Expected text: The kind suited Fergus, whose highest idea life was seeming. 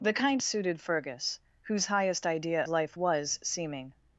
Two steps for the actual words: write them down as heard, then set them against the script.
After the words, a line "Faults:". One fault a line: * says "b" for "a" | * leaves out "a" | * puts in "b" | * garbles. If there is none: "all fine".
The kind suited Fergus, whose highest idea life was seeming.
Faults:
all fine